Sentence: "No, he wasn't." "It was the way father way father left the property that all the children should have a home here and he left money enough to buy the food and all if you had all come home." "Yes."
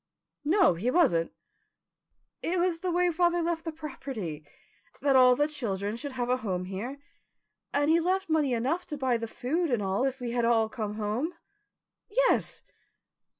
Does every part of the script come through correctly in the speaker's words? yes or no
no